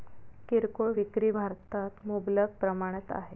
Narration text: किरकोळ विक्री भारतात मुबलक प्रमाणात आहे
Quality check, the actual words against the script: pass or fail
pass